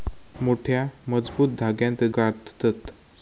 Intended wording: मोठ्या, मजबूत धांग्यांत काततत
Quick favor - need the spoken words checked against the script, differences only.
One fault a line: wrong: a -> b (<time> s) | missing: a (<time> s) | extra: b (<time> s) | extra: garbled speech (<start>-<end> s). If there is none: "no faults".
no faults